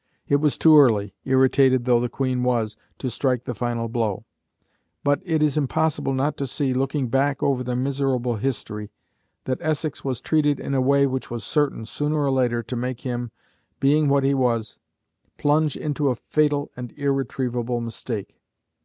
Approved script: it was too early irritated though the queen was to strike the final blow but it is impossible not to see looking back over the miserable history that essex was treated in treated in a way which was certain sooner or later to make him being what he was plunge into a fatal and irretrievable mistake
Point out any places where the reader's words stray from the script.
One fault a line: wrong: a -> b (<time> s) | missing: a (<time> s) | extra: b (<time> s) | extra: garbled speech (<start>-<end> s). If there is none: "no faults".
missing: treated in (10.7 s)